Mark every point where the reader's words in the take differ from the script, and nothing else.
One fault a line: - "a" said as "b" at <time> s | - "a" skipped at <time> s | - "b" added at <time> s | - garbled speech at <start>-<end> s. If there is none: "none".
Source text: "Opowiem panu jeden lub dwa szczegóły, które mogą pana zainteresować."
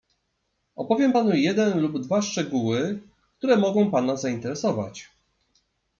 none